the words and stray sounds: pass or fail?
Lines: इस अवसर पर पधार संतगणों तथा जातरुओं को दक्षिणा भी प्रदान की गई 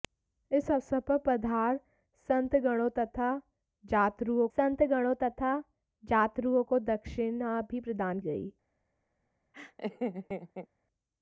fail